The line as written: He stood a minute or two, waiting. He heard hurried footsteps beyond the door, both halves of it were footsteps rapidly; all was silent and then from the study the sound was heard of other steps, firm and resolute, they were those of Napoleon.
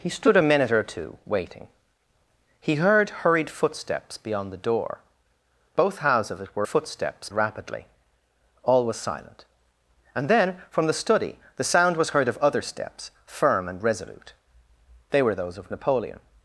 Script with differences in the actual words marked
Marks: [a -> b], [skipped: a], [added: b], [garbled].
He stood a minute or two, waiting. He heard hurried footsteps beyond the door, both halves of it were footsteps rapidly; all was silent and then from the study the sound was heard of other steps, firm and resolute, they were those of Napoleon.